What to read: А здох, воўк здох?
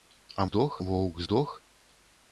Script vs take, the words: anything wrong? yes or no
no